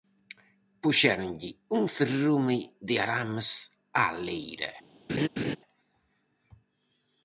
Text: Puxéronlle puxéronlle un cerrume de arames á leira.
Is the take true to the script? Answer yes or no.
no